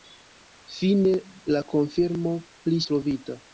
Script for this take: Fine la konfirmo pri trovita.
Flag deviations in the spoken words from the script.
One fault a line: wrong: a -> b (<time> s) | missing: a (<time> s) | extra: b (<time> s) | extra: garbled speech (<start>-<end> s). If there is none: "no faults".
no faults